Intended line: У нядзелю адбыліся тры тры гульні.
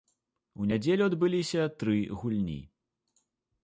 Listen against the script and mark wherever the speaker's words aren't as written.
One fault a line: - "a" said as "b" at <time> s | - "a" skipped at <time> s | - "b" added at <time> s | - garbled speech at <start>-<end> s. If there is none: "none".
- "тры" skipped at 2.0 s